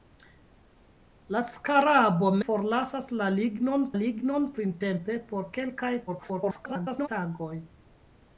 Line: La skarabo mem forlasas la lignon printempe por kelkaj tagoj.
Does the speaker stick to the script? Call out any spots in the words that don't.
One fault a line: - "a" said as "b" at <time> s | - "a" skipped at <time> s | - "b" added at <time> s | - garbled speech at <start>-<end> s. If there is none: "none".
- "mem" skipped at 2.3 s
- "lignon" added at 4.0 s
- garbled speech at 6.1-7.1 s